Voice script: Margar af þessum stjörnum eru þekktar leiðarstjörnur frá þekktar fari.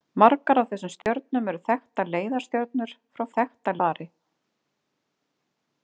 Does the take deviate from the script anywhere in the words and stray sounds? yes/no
yes